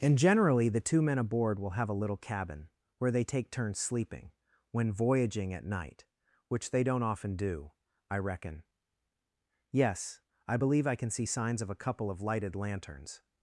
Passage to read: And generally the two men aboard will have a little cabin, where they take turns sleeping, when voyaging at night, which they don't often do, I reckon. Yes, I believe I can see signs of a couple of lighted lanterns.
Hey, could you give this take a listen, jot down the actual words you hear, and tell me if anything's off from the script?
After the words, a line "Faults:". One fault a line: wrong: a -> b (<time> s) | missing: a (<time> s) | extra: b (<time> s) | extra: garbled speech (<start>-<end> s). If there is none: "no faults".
And generally the two men aboard will have a little cabin, where they take turns sleeping, when voyaging at night, which they don't often do, I reckon. Yes, I believe I can see signs of a couple of lighted lanterns.
Faults:
no faults